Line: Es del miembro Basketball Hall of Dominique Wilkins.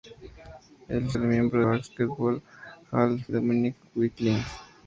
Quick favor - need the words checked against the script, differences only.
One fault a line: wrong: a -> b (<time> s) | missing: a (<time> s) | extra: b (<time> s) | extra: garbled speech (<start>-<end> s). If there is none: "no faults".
no faults